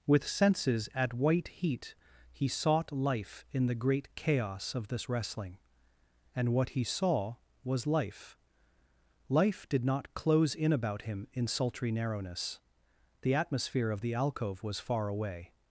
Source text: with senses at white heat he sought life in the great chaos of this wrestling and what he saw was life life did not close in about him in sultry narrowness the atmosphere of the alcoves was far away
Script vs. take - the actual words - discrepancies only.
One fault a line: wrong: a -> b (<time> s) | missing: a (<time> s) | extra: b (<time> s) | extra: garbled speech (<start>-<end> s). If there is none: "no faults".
wrong: alcoves -> alcove (14.1 s)